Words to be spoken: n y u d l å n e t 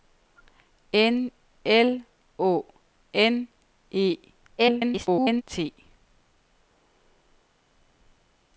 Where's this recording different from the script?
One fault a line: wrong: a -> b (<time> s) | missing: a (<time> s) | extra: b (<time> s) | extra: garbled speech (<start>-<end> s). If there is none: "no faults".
missing: y u d (1.3 s)
extra: garbled speech (4.6-5.4 s)